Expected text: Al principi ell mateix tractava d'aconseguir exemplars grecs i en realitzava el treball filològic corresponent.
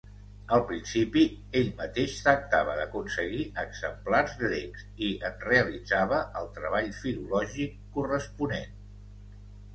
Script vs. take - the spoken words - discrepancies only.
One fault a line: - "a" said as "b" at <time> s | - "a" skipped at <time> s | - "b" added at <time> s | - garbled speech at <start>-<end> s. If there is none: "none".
none